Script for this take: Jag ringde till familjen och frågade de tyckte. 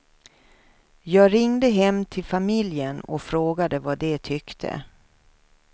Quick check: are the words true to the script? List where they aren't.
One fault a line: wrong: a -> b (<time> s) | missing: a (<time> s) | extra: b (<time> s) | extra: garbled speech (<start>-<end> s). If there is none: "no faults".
extra: hem (1.7 s)
extra: vad (3.8 s)